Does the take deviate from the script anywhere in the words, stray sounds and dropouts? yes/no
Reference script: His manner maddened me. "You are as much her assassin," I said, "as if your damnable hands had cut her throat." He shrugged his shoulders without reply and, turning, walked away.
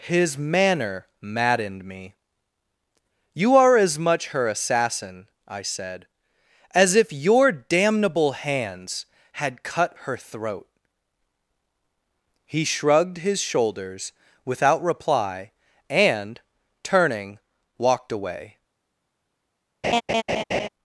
yes